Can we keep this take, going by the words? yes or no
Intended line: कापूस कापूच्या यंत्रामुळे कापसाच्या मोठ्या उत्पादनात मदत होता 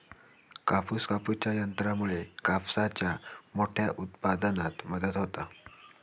yes